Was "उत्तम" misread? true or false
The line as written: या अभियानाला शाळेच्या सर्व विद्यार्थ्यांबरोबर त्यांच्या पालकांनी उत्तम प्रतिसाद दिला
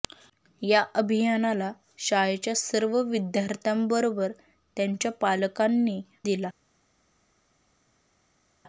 true